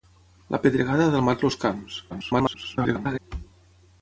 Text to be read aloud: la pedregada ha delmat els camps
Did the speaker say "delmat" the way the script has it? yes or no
yes